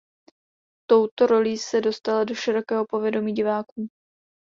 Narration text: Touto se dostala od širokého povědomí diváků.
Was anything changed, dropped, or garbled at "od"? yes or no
yes